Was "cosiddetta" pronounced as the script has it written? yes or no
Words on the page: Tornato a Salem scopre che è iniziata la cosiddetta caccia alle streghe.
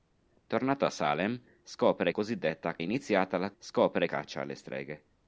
no